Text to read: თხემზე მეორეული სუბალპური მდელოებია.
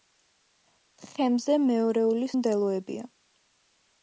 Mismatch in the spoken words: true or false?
true